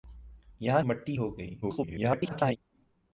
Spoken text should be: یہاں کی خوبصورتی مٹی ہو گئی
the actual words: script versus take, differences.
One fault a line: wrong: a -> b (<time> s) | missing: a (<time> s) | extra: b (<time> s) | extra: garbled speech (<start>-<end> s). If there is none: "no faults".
missing: کی خوبصورتی (0.8 s)
extra: garbled speech (1.6-2.6 s)